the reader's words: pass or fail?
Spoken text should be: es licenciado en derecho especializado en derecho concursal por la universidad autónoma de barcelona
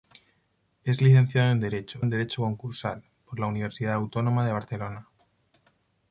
fail